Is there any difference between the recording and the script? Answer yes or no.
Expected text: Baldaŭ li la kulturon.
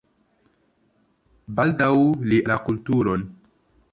no